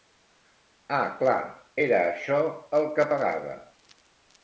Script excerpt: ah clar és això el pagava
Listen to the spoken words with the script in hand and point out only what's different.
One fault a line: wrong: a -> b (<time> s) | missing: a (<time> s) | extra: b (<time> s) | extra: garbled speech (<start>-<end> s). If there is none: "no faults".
wrong: és -> era (1.9 s)
extra: que (3.0 s)